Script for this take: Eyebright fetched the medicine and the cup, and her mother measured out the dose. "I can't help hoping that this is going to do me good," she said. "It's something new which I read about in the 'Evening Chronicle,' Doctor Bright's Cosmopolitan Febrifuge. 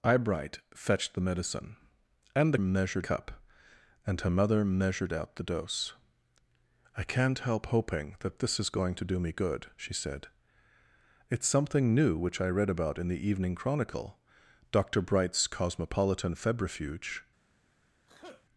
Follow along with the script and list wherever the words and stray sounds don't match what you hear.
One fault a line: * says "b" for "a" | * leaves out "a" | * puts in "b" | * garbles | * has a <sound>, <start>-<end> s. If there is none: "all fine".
* says "measured" for "the"
* has a sneeze, 18.1-18.5 s